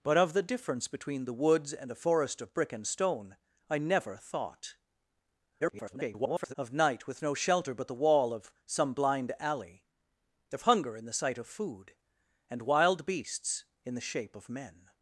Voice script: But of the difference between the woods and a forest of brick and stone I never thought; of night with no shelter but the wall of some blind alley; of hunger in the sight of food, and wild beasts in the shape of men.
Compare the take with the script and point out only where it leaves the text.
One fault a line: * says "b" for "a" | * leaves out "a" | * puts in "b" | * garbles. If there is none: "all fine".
* garbles